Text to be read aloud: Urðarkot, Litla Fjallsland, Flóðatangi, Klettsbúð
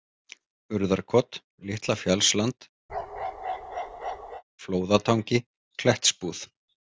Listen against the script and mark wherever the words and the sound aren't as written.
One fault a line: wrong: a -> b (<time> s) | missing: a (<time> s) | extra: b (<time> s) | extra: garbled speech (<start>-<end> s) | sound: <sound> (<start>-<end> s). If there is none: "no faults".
sound: bark (2.9-4.4 s)